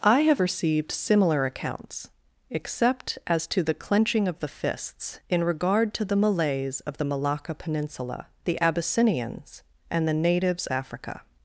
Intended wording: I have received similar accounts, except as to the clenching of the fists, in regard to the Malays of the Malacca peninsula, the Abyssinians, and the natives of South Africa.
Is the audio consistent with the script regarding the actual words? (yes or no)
no